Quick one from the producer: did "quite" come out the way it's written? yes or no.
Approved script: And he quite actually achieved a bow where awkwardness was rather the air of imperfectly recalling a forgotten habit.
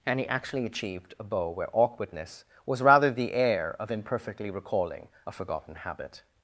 no